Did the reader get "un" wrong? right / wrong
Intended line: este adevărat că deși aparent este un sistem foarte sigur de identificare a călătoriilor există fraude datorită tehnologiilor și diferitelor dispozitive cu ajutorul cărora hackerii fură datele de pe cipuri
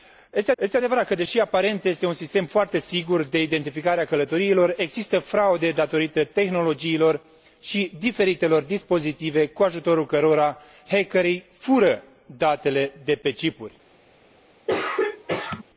right